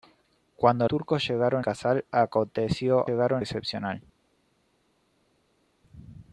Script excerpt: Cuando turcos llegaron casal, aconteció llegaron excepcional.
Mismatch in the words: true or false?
false